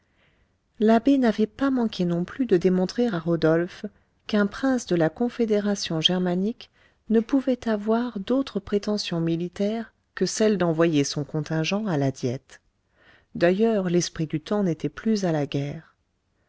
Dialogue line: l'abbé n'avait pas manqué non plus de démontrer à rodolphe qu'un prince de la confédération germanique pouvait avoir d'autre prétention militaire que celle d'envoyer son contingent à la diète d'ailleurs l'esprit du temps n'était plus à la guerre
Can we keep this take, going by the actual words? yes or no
no